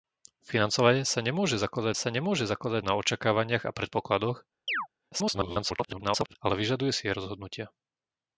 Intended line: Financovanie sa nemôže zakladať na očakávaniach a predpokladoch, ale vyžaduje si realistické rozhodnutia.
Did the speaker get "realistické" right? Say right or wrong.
wrong